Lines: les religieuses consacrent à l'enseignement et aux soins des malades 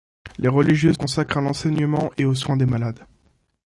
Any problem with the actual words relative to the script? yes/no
no